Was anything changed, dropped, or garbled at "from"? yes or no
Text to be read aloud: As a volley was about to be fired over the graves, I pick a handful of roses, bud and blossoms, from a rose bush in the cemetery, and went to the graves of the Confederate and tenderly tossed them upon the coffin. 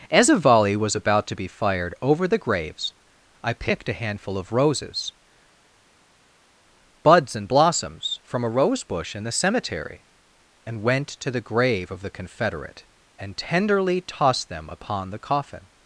no